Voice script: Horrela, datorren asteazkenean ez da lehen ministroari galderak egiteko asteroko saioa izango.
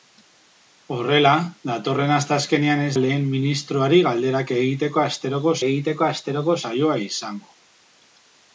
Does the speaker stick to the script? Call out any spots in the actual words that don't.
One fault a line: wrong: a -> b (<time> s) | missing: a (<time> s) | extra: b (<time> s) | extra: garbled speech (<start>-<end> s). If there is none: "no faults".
missing: da (3.0 s)
extra: egiteko asteroko (5.7 s)